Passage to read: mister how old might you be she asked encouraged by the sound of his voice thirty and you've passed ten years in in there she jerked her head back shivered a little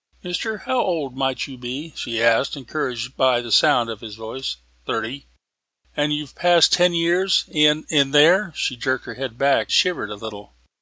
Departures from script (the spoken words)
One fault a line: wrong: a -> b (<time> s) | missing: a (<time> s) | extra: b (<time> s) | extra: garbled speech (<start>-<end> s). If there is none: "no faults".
no faults